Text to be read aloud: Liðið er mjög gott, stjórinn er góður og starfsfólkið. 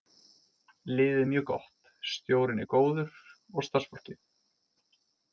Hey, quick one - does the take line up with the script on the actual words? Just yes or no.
yes